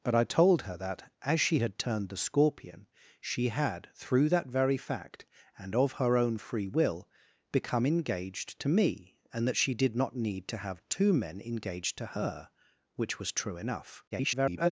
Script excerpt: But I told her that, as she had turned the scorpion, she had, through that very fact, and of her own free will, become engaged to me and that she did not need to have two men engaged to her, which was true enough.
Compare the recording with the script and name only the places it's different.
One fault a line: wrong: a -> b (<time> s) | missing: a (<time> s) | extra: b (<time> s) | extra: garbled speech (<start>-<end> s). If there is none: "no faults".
extra: garbled speech (14.1-14.7 s)